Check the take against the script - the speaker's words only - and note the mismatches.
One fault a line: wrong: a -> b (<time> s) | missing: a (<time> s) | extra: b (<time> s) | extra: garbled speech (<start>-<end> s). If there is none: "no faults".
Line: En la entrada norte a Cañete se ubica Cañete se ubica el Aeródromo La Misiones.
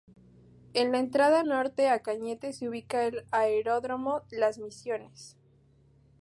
missing: Cañete se ubica (3.1 s)
wrong: La -> Las (4.3 s)